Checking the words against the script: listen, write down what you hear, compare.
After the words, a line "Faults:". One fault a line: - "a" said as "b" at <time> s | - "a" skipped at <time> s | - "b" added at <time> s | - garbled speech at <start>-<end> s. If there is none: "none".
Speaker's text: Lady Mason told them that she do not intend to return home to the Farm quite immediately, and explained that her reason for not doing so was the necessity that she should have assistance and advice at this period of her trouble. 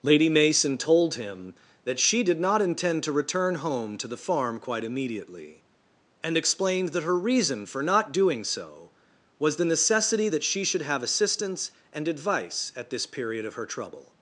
Lady Mason told him that she did not intend to return home to the Farm quite immediately, and explained that her reason for not doing so was the necessity that she should have assistance and advice at this period of her trouble.
Faults:
- "them" said as "him" at 1.1 s
- "do" said as "did" at 2.2 s